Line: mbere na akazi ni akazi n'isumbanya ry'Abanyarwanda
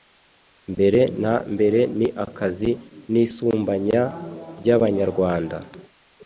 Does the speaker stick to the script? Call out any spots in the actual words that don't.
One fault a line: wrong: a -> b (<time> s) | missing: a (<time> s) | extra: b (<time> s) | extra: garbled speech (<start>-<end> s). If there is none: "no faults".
wrong: akazi -> mbere (1.5 s)